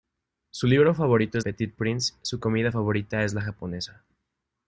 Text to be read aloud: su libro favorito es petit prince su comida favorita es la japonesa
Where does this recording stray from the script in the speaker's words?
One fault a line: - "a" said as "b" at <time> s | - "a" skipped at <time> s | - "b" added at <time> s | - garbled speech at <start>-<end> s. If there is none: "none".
none